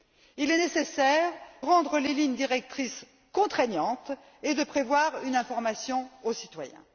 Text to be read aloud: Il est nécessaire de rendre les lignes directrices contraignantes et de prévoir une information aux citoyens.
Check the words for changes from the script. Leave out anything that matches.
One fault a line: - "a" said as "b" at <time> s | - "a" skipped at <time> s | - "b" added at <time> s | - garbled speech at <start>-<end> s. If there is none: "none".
- "de" skipped at 1.3 s